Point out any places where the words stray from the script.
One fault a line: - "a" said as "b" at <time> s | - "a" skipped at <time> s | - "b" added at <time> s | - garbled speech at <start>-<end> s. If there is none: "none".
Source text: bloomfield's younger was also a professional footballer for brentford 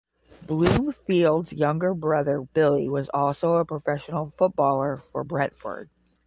- "brother billy" added at 1.9 s